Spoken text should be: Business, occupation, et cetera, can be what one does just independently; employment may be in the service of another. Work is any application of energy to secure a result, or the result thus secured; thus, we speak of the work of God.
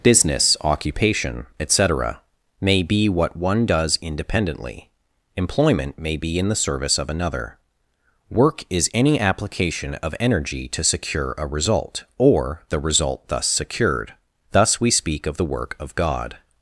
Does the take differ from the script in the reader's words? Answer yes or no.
yes